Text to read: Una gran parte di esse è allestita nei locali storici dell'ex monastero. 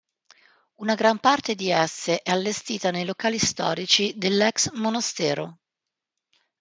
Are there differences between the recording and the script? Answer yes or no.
no